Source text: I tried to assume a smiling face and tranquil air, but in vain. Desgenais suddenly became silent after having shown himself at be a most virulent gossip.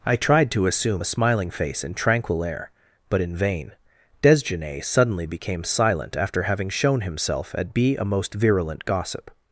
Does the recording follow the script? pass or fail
pass